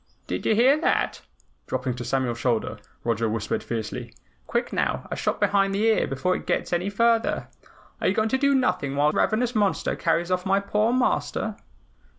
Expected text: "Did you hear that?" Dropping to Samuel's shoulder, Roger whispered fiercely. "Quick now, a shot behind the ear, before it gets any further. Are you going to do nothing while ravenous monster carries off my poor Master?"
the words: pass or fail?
pass